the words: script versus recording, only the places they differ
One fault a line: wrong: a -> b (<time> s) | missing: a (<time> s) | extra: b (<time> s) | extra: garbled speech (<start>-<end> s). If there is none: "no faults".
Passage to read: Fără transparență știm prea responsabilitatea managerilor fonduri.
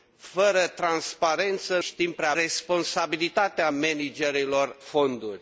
no faults